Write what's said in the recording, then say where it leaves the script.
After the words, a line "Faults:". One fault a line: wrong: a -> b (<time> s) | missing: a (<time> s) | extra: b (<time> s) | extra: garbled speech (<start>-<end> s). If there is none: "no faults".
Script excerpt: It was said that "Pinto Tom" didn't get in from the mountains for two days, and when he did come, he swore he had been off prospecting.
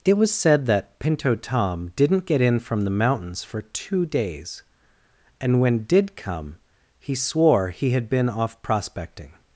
It was said that "Pinto Tom" didn't get in from the mountains for two days, and when did come, he swore he had been off prospecting.
Faults:
missing: he (5.8 s)